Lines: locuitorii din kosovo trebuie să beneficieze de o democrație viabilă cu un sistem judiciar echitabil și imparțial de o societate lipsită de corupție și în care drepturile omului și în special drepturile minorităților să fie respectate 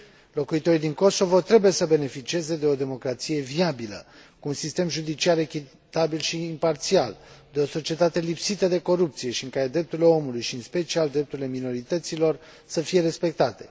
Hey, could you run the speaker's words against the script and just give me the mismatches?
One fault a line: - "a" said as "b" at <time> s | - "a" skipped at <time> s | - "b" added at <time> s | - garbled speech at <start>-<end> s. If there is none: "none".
none